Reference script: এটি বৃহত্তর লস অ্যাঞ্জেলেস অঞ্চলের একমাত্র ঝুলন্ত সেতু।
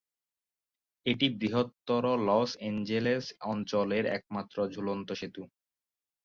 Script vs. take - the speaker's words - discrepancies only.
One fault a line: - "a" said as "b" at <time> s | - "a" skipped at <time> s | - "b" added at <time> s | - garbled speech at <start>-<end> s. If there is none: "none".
none